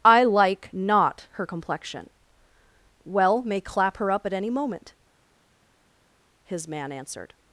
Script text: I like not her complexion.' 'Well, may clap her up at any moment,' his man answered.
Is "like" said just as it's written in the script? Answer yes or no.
yes